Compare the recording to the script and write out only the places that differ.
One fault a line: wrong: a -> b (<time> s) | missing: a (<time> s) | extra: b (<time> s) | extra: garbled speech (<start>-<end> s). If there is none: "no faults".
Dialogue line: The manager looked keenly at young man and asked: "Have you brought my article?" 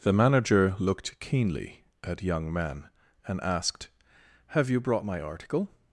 no faults